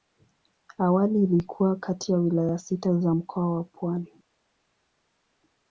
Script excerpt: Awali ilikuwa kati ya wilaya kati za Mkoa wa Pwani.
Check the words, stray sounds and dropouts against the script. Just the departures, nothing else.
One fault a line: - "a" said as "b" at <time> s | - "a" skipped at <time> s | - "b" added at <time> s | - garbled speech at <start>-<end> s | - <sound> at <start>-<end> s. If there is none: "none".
- "kati" said as "sita" at 2.6 s